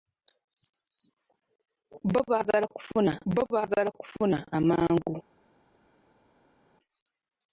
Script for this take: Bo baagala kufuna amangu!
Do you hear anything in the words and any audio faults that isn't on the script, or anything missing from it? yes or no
yes